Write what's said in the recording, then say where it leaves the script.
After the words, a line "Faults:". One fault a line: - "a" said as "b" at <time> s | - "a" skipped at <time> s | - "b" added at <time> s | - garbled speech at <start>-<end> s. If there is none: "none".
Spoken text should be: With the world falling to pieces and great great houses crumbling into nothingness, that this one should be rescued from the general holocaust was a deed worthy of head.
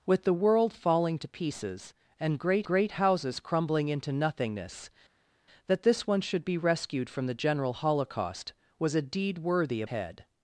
With the world falling to pieces and great great houses crumbling into nothingness, that this one should be rescued from the general holocaust was a deed worthy of head.
Faults:
none